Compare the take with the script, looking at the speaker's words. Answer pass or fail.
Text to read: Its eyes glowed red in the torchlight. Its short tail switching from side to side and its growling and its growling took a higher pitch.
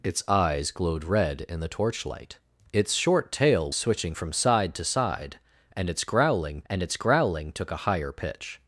pass